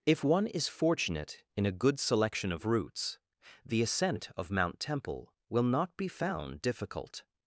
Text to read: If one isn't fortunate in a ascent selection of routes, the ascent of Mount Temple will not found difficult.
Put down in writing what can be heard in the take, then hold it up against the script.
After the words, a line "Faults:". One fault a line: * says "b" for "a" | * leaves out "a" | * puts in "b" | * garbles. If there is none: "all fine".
If one is fortunate in a good selection of routes, the ascent of Mount Temple will not be found difficult.
Faults:
* says "is" for "isn't"
* says "good" for "ascent"
* puts in "be"